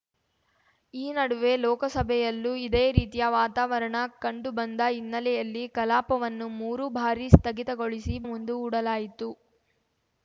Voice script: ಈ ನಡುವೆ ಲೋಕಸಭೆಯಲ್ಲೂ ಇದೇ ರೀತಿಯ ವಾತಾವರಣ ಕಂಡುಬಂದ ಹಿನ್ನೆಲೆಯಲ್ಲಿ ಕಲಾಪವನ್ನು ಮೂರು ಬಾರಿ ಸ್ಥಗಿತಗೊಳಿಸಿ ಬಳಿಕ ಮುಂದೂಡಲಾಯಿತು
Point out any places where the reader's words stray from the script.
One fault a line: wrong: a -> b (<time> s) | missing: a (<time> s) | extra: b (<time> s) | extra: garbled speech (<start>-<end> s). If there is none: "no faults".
missing: ಬಳಿಕ (8.2 s)